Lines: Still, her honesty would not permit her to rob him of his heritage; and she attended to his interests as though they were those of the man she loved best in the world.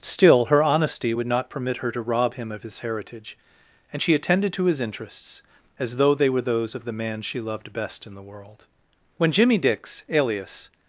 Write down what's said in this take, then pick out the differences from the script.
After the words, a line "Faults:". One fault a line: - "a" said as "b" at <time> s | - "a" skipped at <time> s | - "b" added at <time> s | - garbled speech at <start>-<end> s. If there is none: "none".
Still, her honesty would not permit her to rob him of his heritage; and she attended to his interests as though they were those of the man she loved best in the world. When Jimmy Dix, alias
Faults:
- "When Jimmy Dix alias" added at 9.2 s